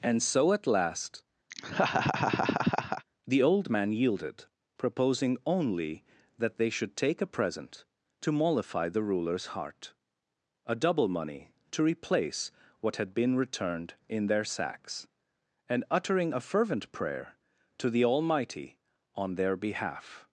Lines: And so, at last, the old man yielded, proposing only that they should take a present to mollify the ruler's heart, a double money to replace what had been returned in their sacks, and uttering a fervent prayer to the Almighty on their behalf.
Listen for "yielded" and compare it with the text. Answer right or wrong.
right